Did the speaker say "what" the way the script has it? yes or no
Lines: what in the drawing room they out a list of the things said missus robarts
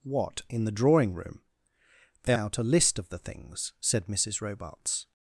yes